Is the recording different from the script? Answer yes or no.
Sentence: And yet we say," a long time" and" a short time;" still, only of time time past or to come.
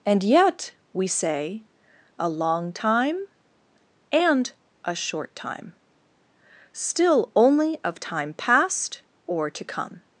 yes